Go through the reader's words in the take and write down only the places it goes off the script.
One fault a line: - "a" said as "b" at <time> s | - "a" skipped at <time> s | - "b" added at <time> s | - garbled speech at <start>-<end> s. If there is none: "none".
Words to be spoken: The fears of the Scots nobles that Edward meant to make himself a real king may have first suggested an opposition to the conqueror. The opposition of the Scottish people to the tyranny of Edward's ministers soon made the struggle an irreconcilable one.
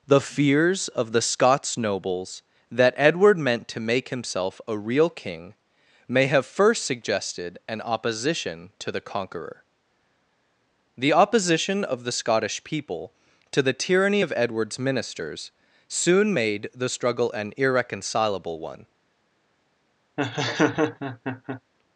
none